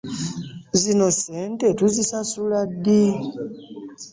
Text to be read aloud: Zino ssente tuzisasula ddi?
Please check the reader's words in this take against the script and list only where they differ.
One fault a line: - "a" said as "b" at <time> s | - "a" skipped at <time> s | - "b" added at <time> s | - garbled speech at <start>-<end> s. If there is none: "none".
none